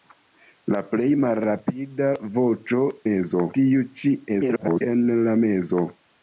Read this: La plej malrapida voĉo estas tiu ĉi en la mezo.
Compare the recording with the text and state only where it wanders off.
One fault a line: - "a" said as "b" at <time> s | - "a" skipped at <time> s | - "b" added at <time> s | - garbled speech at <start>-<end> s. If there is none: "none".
- "estas" said as "mezo" at 3.1 s
- garbled speech at 4.3-4.8 s